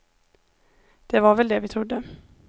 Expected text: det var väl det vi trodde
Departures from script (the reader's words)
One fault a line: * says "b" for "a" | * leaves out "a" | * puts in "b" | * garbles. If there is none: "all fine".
all fine